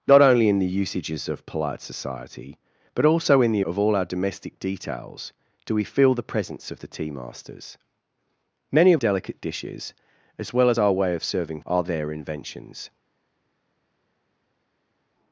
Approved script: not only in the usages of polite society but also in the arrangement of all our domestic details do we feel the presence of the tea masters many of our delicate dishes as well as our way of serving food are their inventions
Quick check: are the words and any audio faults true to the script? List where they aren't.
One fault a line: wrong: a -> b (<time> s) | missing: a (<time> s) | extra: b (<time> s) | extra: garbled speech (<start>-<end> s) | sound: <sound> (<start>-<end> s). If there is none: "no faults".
missing: arrangement (3.6 s)
missing: our (9.0 s)
missing: food (11.6 s)